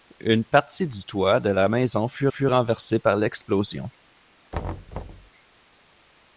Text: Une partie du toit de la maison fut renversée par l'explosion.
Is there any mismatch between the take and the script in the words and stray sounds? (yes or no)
yes